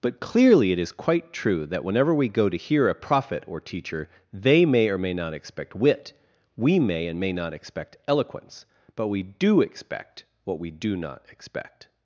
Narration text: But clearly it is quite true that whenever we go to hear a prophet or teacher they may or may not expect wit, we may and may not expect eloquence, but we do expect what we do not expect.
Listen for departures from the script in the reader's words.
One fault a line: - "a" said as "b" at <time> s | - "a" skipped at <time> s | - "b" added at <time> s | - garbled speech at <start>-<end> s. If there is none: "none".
none